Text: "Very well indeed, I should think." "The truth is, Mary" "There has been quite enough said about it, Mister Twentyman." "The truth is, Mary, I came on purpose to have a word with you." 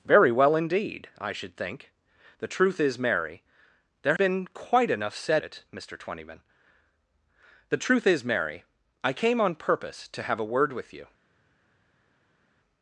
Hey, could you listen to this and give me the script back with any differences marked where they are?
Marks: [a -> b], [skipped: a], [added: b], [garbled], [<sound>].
"Very well indeed, I should think." "The truth is, Mary" "There [skipped: has] been quite enough said [skipped: about] it, Mister Twentyman." "The truth is, Mary, I came on purpose to have a word with you."